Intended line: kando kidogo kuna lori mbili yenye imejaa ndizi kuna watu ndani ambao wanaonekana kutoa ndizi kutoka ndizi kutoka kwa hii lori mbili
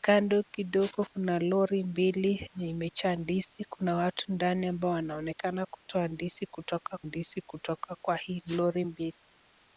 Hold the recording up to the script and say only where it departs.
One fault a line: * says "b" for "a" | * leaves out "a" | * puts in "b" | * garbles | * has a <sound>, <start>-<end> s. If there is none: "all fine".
all fine